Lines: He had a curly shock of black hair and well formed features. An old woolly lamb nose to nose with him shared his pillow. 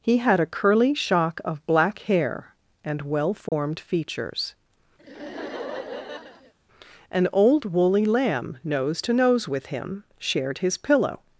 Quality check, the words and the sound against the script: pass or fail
fail